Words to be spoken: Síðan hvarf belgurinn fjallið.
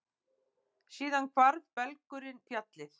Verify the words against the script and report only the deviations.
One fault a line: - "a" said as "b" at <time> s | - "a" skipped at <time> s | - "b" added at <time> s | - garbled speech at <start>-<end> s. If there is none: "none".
none